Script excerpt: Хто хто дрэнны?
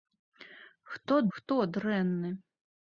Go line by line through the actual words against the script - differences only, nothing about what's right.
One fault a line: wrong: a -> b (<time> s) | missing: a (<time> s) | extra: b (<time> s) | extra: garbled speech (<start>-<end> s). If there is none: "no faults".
no faults